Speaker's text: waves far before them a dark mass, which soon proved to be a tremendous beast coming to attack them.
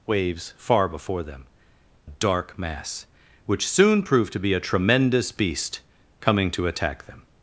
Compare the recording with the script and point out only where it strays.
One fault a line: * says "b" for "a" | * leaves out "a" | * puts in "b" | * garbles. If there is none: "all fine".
* leaves out "a"